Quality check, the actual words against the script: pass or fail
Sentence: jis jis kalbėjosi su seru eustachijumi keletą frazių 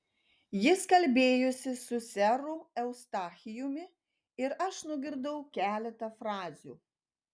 fail